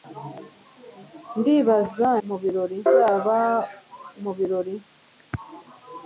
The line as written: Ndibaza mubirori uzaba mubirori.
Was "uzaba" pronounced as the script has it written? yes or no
yes